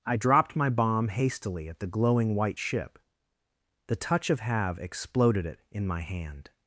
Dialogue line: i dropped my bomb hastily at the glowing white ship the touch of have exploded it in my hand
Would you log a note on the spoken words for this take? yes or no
no